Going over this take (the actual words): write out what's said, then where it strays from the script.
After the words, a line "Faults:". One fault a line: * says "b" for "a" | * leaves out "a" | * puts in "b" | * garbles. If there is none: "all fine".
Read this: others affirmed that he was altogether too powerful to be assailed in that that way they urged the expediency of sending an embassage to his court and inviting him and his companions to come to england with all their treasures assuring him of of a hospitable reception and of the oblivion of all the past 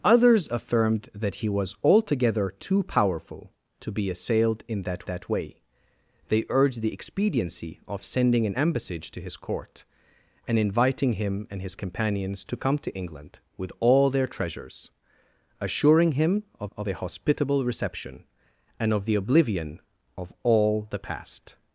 others affirmed that he was altogether too powerful to be assailed in that that way they urged the expediency of sending an embassage to his court and inviting him and his companions to come to england with all their treasures assuring him of of a hospitable reception and of the oblivion of all the past
Faults:
all fine